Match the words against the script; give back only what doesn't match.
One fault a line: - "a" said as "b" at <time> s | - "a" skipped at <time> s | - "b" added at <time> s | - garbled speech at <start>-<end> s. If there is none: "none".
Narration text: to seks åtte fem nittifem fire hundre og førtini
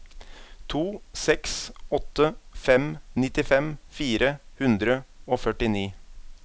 none